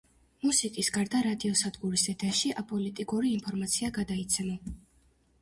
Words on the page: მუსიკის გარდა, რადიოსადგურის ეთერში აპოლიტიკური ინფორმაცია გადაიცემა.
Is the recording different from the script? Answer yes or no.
no